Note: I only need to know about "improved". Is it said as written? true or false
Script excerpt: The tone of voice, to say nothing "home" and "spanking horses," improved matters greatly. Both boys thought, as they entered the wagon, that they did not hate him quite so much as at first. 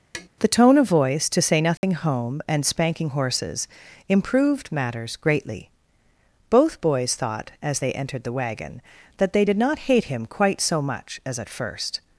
true